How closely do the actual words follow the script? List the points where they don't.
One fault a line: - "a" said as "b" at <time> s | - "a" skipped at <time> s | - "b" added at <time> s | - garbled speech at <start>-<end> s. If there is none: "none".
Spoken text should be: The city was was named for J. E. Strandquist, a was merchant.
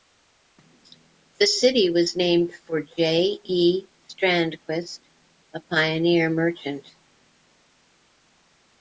- "was" skipped at 2.1 s
- "was" said as "pioneer" at 5.6 s